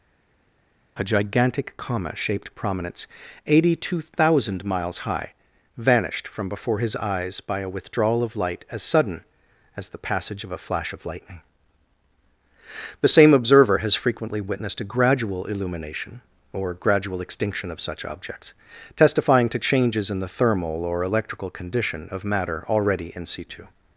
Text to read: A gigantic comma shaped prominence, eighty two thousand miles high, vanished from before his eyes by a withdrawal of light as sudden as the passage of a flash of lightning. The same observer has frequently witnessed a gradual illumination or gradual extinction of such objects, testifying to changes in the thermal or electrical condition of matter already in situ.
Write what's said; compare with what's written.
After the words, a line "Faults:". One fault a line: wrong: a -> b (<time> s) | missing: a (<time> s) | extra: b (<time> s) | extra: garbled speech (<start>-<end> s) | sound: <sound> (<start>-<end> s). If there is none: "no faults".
A gigantic comma shaped prominence, eighty two thousand miles high, vanished from before his eyes by a withdrawal of light as sudden as the passage of a flash of lightning. The same observer has frequently witnessed a gradual illumination or gradual extinction of such objects, testifying to changes in the thermal or electrical condition of matter already in situ.
Faults:
no faults